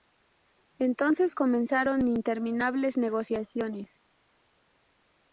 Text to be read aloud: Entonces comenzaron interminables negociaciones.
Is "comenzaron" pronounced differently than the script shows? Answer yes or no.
no